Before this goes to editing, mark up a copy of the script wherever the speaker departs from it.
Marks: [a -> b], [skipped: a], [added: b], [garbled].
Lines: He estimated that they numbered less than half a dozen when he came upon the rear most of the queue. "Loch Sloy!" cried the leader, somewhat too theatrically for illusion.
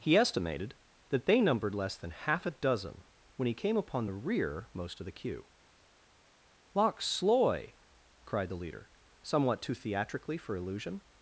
He estimated that they numbered less than half a dozen when he came upon the rear most of the queue. "Loch Sloy!" cried the leader, somewhat too theatrically for illusion.